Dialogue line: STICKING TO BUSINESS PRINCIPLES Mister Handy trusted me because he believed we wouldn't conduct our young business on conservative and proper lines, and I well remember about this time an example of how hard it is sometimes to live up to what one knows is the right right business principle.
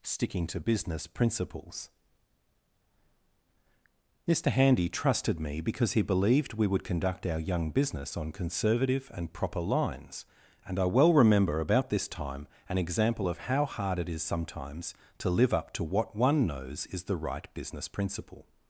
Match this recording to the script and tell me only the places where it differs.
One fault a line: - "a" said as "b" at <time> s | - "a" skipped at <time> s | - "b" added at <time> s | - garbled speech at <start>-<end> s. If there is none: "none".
- "wouldn't" said as "would" at 6.7 s
- "right" skipped at 17.5 s